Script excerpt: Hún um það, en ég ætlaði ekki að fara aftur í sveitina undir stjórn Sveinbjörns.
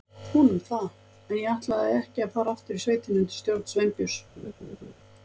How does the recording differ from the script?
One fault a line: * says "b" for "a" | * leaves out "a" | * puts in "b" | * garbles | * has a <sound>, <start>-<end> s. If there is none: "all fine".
* has a laugh, 4.4-4.9 s